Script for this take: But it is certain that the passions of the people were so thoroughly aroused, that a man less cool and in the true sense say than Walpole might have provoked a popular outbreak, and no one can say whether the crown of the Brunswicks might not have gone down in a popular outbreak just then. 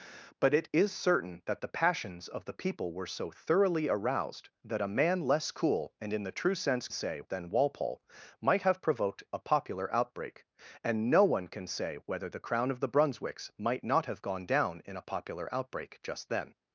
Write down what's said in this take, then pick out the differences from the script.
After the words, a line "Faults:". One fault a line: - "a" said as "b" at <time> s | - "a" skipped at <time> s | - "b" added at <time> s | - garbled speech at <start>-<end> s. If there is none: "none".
But it is certain that the passions of the people were so thoroughly aroused, that a man less cool and in the true sense say than Walpole might have provoked a popular outbreak, and no one can say whether the crown of the Brunswicks might not have gone down in a popular outbreak just then.
Faults:
none